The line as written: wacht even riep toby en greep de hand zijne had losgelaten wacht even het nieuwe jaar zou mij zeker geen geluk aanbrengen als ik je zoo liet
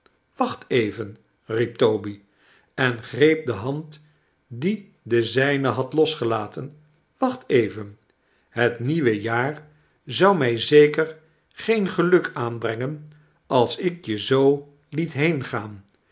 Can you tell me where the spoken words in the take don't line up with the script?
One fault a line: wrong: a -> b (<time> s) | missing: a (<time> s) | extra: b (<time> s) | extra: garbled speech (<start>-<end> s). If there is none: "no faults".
extra: die de (4.5 s)